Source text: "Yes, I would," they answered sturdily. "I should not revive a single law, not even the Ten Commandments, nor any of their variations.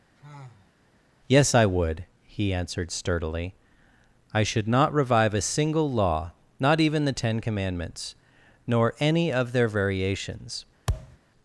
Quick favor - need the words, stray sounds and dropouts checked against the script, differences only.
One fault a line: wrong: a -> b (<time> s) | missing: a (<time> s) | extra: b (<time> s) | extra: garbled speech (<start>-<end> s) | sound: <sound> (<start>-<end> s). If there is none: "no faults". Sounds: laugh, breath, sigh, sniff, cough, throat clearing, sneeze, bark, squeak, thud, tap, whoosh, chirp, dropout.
sound: sigh (0.2-0.7 s)
wrong: they -> he (2.3 s)
sound: thud (10.9-11.2 s)